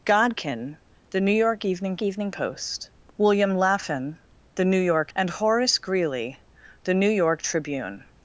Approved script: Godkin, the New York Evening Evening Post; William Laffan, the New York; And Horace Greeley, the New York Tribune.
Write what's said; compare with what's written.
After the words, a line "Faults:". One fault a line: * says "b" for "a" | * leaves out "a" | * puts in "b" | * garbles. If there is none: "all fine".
Godkin, the New York Evening Evening Post; William Laffan, the New York; And Horace Greeley, the New York Tribune.
Faults:
all fine